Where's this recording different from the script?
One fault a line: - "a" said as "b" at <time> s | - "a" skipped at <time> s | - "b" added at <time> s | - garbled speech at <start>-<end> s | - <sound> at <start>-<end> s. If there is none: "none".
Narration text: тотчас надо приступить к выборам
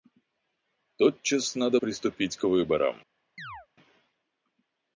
- chirp at 3.4-3.7 s